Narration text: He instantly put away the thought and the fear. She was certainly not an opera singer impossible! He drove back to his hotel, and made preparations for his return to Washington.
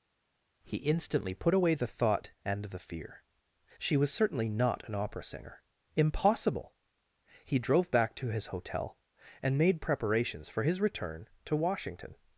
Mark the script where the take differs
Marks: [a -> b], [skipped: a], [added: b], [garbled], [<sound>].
He instantly put away the thought and the fear. She was certainly not an opera singer impossible! He drove back to his hotel, and made preparations for his return to Washington.